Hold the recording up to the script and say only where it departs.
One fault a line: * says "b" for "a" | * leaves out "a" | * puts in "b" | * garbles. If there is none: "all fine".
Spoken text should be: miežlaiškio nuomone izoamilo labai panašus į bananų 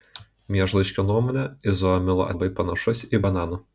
all fine